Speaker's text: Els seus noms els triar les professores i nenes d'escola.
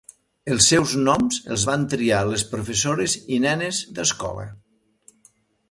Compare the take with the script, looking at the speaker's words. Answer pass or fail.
fail